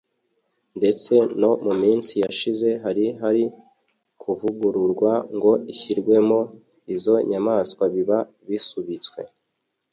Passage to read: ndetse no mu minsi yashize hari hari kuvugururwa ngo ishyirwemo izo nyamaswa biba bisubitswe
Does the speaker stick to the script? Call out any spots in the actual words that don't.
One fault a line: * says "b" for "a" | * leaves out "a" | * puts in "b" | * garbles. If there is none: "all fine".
all fine